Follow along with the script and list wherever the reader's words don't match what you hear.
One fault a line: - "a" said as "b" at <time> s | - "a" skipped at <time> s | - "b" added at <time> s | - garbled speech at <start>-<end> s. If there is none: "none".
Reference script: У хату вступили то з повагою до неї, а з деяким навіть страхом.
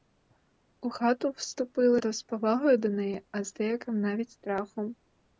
none